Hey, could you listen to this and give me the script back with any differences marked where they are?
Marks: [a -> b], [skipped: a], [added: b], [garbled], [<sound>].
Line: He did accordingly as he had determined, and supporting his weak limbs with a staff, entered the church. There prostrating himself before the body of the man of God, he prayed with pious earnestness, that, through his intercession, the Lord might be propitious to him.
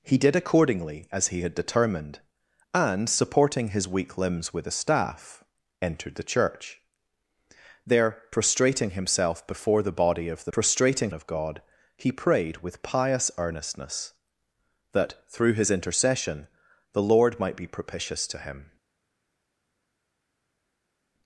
He did accordingly as he had determined, and supporting his weak limbs with a staff, entered the church. There prostrating himself before the body of the [man -> prostrating] of God, he prayed with pious earnestness, that, through his intercession, the Lord might be propitious to him.